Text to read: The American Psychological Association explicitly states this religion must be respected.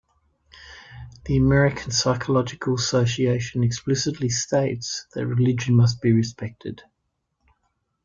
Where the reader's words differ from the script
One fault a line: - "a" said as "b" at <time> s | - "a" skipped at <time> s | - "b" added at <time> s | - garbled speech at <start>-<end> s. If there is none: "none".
- "this" said as "that" at 5.1 s